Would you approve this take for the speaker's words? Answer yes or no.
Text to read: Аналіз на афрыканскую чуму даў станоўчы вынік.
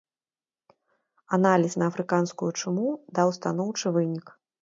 yes